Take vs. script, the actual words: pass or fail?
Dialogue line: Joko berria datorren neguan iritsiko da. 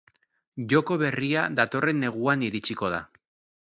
pass